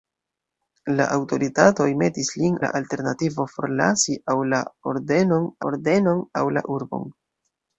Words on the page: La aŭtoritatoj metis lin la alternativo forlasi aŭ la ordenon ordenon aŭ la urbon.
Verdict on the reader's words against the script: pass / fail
pass